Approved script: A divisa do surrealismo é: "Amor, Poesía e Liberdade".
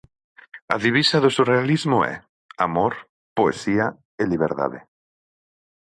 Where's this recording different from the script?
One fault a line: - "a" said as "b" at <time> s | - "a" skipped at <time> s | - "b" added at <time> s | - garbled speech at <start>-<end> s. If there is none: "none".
none